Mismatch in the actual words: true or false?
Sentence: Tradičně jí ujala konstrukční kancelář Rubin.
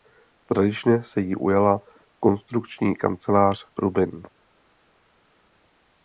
true